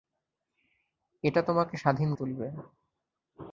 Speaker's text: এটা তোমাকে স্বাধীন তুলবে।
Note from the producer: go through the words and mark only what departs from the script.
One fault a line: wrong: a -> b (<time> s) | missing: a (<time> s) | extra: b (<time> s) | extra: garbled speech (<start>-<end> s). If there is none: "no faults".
no faults